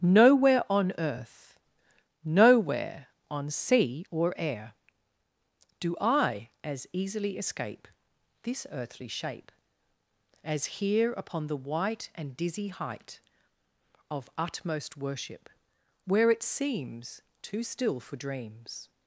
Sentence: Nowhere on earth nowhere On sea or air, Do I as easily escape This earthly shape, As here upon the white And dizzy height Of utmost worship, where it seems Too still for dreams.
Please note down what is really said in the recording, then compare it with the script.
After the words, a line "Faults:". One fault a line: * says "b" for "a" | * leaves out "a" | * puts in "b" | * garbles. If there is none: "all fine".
Nowhere on earth nowhere On sea or air, Do I as easily escape This earthly shape, As here upon the white And dizzy height Of utmost worship, where it seems Too still for dreams.
Faults:
all fine